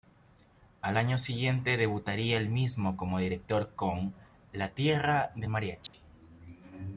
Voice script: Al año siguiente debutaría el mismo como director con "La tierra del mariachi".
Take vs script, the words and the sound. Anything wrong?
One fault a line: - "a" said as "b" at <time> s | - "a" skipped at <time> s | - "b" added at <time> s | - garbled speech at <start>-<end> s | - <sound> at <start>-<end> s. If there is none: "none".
- dropout at 5.9-5.9 s